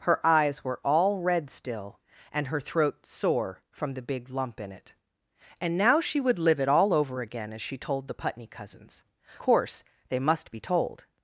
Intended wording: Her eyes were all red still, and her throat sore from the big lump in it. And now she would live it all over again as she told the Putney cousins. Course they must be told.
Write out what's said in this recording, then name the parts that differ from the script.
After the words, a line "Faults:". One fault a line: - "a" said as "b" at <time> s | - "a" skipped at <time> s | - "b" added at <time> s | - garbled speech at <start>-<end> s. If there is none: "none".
Her eyes were all red still, and her throat sore from the big lump in it. And now she would live it all over again as she told the Putney cousins. Course they must be told.
Faults:
none